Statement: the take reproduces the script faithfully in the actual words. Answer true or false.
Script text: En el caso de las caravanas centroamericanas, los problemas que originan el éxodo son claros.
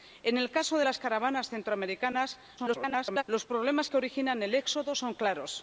false